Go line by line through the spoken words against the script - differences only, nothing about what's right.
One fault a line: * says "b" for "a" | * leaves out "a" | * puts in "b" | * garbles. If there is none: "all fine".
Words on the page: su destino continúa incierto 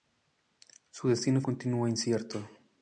all fine